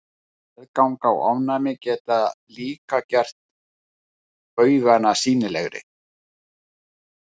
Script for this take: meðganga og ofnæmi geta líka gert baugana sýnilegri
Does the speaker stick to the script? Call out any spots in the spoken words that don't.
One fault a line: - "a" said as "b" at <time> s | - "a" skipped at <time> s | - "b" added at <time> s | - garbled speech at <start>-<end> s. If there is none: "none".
none